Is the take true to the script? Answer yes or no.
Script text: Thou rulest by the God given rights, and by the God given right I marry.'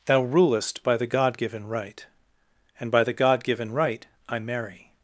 no